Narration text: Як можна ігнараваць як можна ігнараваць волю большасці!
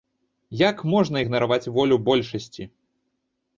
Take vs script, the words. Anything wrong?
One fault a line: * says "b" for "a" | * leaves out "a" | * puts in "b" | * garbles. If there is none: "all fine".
* leaves out "як можна ігнараваць"